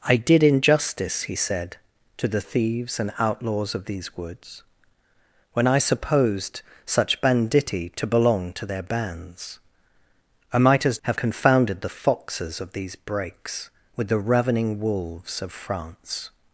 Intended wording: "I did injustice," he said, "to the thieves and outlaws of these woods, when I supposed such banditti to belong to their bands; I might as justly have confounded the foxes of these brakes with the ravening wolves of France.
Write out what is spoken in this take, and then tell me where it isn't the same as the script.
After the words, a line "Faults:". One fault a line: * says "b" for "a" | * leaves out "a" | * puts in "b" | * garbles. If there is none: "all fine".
"I did injustice," he said, "to the thieves and outlaws of these woods, when I supposed such banditti to belong to their bands; I might as have confounded the foxes of these brakes with the ravening wolves of France.
Faults:
* leaves out "justly"